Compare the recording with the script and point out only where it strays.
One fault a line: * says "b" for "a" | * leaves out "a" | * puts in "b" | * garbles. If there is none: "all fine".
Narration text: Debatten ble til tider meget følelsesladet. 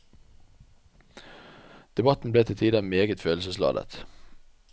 all fine